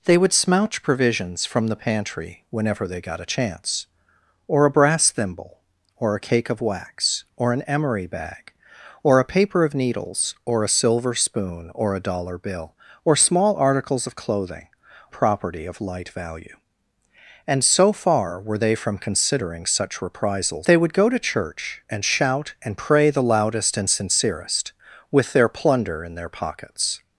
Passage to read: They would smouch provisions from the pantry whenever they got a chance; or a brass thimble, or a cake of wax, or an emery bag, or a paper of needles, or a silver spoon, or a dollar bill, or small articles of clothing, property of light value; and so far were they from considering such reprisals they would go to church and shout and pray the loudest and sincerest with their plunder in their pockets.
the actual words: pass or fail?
pass